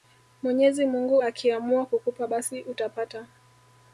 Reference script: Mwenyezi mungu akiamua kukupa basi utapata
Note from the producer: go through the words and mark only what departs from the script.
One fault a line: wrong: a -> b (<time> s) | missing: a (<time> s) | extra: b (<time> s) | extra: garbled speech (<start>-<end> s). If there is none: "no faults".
no faults